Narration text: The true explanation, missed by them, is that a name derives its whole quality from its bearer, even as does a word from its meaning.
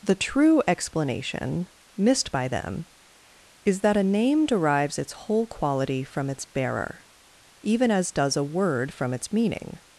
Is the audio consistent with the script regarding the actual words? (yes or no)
yes